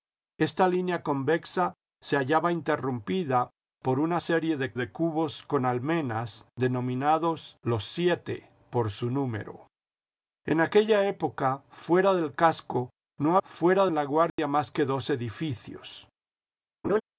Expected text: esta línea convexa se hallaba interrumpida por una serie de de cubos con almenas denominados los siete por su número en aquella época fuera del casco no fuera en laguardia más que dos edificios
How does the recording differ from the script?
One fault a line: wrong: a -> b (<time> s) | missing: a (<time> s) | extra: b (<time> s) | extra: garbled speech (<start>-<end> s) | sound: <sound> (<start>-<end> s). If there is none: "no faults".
sound: dropout (14.3-14.4 s)
sound: laugh (16.8-17.0 s)